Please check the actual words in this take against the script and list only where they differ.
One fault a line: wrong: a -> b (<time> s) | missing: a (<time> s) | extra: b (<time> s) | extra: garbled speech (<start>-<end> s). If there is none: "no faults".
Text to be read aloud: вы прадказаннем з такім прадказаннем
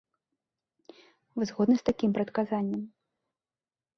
wrong: прадказаннем -> згодны (1.5 s)